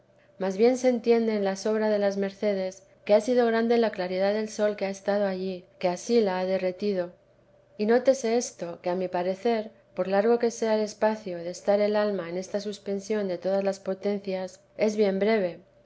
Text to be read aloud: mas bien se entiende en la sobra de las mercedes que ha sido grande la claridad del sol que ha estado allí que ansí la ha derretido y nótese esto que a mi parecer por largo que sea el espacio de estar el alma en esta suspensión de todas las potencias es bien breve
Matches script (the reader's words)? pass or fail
pass